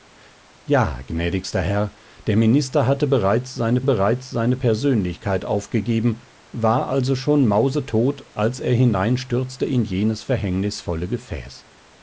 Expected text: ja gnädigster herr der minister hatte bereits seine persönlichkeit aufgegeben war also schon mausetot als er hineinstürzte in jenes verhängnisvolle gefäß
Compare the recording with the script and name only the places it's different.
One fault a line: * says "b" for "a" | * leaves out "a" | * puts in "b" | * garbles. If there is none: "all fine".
* puts in "bereits seine"